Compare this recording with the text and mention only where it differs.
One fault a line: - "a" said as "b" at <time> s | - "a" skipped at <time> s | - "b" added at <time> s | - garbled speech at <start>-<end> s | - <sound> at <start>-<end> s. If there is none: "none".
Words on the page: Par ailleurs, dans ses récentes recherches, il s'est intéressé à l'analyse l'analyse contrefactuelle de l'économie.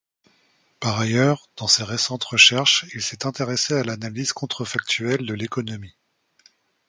- "l'analyse" skipped at 4.3 s